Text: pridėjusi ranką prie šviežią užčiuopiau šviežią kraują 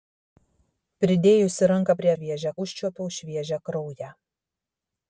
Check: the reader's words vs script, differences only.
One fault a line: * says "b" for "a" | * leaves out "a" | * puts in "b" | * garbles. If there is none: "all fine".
all fine